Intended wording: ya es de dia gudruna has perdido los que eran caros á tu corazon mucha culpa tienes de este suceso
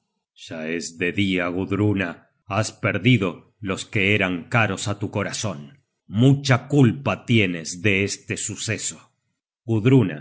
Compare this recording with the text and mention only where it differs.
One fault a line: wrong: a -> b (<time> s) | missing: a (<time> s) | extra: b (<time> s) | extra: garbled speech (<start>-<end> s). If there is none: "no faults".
no faults